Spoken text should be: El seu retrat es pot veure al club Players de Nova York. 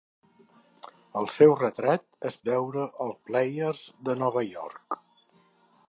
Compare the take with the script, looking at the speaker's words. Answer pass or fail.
fail